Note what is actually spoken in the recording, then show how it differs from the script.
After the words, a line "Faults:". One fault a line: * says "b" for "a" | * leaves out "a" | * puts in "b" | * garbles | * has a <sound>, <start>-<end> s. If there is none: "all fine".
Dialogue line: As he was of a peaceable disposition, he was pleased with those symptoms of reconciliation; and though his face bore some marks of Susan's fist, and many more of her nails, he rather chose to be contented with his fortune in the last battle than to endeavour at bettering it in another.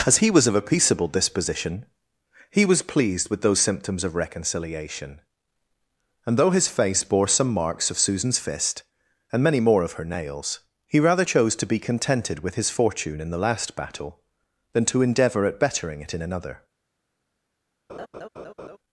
As he was of a peaceable disposition, he was pleased with those symptoms of reconciliation; and though his face bore some marks of Susan's fist, and many more of her nails, he rather chose to be contented with his fortune in the last battle than to endeavour at bettering it in another.
Faults:
* has a laugh, 17.9-18.8 s